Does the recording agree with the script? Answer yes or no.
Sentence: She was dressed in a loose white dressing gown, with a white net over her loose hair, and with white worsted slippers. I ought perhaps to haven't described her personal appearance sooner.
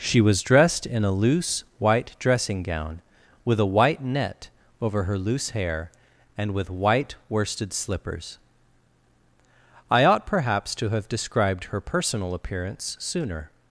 no